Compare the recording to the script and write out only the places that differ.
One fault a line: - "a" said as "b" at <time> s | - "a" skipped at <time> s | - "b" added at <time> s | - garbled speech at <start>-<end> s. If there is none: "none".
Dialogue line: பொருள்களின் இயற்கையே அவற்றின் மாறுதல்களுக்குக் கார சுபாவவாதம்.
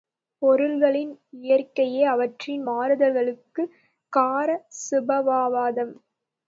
none